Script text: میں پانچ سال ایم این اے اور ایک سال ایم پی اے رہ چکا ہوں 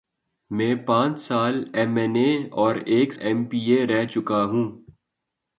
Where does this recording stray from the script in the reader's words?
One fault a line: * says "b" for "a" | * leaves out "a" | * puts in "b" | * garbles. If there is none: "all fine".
* leaves out "سال"